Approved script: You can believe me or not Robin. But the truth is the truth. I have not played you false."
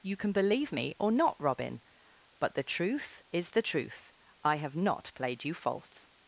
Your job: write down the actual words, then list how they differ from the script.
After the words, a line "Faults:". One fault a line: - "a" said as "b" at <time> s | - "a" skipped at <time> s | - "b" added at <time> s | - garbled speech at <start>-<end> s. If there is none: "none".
You can believe me or not Robin. But the truth is the truth. I have not played you false."
Faults:
none